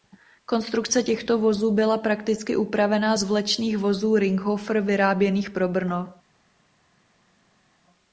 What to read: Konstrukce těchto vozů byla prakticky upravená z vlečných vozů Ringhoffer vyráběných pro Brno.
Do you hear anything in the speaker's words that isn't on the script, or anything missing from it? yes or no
no